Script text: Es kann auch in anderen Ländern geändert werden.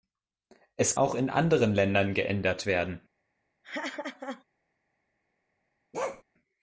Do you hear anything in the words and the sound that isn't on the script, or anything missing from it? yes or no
yes